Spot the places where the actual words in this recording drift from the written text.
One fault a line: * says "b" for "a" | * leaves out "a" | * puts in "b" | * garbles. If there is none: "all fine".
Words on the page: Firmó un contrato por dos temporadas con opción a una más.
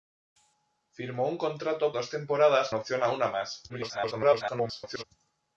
* leaves out "por"
* leaves out "con"
* garbles